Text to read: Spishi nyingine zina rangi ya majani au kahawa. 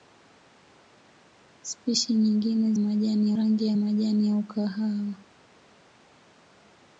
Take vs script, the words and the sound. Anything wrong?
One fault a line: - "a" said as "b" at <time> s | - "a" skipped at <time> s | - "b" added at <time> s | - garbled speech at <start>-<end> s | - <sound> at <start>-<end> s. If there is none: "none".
- "zina" said as "majani" at 2.8 s